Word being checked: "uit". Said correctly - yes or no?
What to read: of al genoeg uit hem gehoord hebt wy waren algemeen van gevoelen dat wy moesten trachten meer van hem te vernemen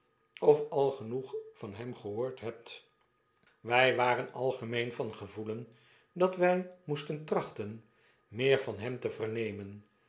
no